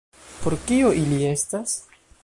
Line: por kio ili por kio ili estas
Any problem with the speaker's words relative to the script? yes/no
yes